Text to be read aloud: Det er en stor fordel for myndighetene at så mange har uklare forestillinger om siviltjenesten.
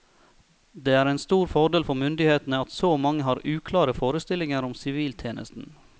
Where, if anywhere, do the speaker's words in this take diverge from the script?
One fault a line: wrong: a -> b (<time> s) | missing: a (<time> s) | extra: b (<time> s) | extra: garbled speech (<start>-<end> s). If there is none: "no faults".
no faults